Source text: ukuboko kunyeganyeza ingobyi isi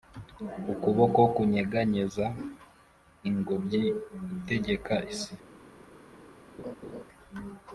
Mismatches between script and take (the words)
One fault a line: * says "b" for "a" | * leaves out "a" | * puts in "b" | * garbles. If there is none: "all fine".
* puts in "itegeka"